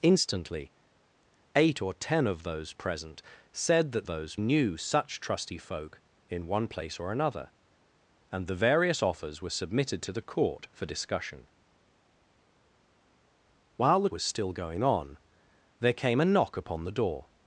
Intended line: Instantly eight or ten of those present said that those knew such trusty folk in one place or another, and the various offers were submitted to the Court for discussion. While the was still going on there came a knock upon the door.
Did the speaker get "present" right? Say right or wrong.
right